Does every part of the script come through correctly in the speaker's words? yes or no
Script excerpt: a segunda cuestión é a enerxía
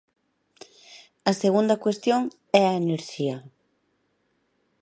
yes